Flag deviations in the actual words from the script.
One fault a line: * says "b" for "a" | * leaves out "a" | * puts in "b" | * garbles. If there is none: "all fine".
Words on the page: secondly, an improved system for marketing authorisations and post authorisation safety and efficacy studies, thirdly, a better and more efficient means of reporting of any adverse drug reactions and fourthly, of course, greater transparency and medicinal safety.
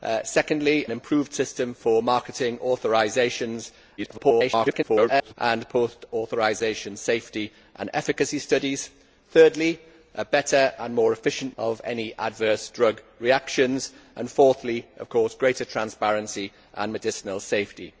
* leaves out "an"
* garbles
* leaves out "means of reporting"